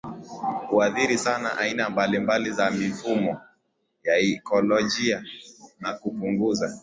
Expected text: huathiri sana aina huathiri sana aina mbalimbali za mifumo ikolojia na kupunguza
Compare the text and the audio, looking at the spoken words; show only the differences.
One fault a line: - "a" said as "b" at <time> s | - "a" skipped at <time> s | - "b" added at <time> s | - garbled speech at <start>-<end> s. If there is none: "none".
- "huathiri sana aina" skipped at 1.9 s
- "ya" added at 4.0 s